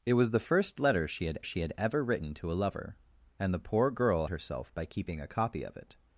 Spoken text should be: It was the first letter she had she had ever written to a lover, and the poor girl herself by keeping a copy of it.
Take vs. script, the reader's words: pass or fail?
pass